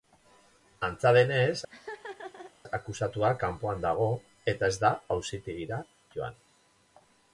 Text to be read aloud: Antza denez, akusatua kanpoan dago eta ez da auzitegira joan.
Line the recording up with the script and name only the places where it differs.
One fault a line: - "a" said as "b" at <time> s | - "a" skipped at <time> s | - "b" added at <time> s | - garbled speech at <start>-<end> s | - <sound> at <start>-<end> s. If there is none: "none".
- laugh at 1.7-2.5 s